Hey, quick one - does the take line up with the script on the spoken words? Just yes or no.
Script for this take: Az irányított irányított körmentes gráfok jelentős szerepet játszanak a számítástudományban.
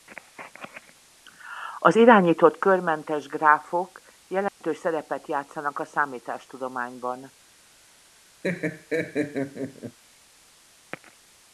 no